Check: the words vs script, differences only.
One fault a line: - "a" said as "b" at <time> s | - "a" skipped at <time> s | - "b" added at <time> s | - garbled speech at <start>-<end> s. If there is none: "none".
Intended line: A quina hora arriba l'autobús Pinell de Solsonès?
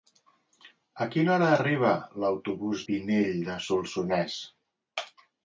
none